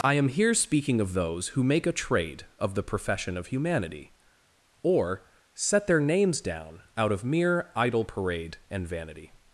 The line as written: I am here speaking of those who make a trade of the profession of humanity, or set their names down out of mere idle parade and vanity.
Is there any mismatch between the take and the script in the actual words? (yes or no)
no